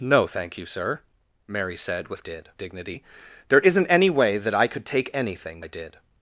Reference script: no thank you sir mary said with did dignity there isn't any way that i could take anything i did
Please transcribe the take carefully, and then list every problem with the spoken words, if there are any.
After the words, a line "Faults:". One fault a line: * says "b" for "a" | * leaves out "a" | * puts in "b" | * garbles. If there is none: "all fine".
no thank you sir mary said with did dignity there isn't any way that i could take anything i did
Faults:
all fine